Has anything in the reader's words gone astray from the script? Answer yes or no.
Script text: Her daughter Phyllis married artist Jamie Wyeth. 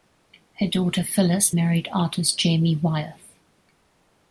no